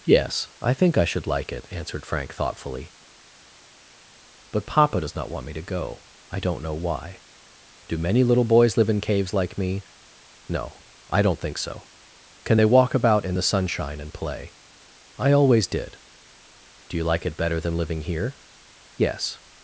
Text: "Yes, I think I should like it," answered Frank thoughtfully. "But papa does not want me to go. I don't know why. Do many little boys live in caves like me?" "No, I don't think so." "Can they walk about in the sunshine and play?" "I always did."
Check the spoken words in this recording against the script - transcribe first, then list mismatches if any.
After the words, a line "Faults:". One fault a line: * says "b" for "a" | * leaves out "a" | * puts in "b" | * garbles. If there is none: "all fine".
"Yes, I think I should like it," answered Frank thoughtfully. "But papa does not want me to go. I don't know why. Do many little boys live in caves like me?" "No, I don't think so." "Can they walk about in the sunshine and play?" "I always did." "Do you like it better than living here?" "Yes
Faults:
* puts in "Do you like it better than living here Yes"